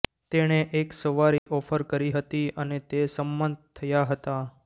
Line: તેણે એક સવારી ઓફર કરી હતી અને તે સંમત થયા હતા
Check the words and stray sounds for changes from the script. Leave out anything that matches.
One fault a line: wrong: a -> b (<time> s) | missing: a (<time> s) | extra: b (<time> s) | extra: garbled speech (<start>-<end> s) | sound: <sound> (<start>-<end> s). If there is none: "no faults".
sound: dropout (1.4-1.5 s)